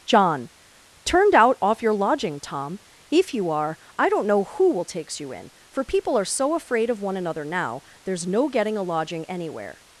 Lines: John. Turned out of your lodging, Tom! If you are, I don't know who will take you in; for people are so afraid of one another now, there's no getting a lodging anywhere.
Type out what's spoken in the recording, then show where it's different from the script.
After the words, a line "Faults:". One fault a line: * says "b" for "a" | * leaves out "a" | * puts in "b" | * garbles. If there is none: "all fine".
John. Turned out off your lodging, Tom! If you are, I don't know who will takes you in; for people are so afraid of one another now, there's no getting a lodging anywhere.
Faults:
* says "off" for "of"
* says "takes" for "take"